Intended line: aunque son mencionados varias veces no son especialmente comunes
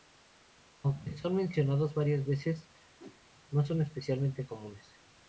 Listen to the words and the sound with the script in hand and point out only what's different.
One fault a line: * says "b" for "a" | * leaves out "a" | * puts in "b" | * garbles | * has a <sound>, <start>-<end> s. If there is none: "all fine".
* has a whoosh, 3.0-3.2 s